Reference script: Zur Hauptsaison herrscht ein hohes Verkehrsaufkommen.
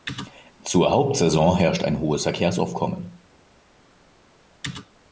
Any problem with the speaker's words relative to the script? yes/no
no